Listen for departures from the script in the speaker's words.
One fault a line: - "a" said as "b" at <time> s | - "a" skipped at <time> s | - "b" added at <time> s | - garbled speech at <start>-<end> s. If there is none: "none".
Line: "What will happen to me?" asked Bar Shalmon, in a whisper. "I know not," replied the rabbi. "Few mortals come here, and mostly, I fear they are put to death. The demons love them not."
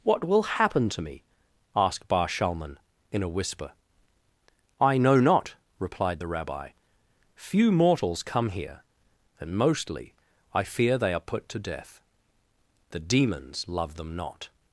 none